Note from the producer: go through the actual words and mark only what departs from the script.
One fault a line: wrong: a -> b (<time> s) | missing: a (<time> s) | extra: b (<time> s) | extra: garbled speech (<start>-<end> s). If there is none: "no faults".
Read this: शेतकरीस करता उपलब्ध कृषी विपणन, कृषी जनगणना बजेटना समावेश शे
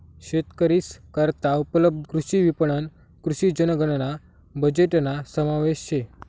no faults